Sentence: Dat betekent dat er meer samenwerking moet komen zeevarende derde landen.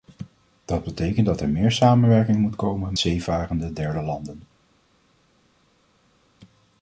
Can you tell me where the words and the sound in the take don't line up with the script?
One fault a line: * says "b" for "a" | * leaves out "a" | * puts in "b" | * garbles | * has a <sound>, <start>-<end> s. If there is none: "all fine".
all fine